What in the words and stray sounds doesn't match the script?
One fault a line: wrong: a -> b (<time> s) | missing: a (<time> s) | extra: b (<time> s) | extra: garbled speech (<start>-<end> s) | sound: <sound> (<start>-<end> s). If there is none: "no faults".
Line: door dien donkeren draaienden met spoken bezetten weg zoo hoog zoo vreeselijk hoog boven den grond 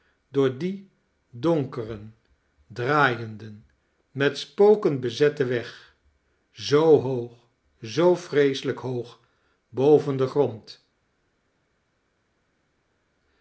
no faults